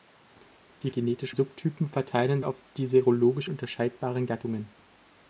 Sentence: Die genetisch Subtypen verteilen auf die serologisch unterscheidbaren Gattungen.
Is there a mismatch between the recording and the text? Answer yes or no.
no